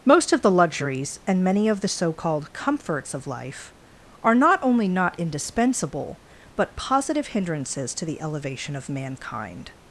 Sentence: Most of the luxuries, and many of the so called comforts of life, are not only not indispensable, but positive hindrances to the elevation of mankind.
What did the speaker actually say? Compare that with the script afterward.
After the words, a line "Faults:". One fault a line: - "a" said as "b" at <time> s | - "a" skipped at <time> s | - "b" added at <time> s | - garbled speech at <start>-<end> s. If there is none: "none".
Most of the luxuries, and many of the so called comforts of life, are not only not indispensable, but positive hindrances to the elevation of mankind.
Faults:
none